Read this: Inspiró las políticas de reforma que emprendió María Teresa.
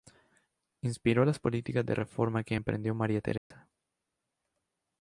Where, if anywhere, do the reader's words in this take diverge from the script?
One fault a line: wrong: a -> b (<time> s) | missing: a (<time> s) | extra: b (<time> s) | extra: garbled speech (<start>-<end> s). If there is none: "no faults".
no faults